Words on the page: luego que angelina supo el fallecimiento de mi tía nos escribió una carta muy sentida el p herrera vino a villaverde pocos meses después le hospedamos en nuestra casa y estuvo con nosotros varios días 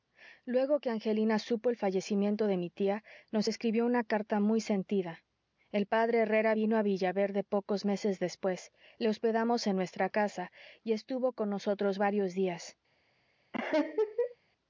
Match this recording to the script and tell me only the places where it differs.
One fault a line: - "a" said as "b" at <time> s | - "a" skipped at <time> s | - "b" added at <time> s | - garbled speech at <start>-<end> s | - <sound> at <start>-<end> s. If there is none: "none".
- laugh at 13.5-14.4 s